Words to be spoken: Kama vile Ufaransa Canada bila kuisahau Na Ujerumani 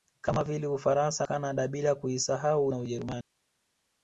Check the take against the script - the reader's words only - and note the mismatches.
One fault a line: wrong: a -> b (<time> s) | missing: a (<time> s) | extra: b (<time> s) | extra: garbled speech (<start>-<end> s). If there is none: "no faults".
no faults